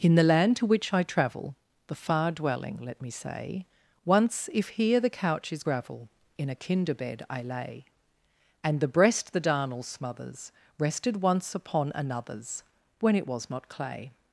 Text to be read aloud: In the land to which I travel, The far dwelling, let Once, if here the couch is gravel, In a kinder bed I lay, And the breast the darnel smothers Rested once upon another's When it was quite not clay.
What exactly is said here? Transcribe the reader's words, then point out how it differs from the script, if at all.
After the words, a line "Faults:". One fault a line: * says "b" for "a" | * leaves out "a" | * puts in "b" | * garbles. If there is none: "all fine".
In the land to which I travel, The far dwelling, let me say Once, if here the couch is gravel, In a kinder bed I lay, And the breast the darnel smothers Rested once upon another's When it was not clay.
Faults:
* puts in "me say"
* leaves out "quite"